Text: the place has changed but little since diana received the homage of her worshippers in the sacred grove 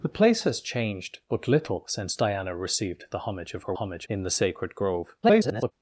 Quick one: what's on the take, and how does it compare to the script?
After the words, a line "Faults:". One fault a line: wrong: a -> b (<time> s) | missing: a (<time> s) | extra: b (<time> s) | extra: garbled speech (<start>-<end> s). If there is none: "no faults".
the place has changed but little since diana received the homage of her homage in the sacred grove [garbled]
Faults:
wrong: worshippers -> homage (3.7 s)
extra: garbled speech (5.2-5.7 s)